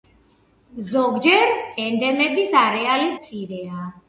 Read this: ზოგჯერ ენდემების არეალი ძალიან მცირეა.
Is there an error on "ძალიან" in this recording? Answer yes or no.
yes